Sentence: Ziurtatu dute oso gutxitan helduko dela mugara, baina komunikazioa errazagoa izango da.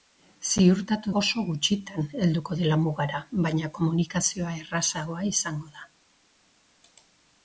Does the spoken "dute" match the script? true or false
false